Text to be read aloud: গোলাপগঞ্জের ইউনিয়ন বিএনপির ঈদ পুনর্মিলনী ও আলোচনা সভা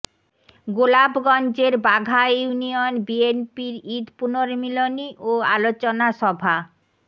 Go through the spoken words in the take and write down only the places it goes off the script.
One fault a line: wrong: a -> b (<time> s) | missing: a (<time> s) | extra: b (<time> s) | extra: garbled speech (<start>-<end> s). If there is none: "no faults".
extra: বাঘা (1.9 s)